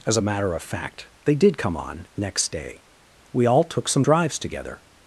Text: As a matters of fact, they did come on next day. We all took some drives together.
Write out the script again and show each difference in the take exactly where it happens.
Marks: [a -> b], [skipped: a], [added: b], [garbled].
As a [matters -> matter] of fact, they did come on next day. We all took some drives together.